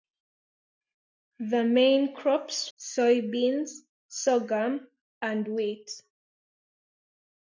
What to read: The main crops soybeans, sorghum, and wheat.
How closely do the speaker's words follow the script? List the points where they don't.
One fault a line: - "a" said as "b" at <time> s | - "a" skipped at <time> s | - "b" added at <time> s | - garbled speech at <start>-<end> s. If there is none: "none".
none